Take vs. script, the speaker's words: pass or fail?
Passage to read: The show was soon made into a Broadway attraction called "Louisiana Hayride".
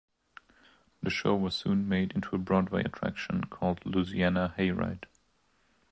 pass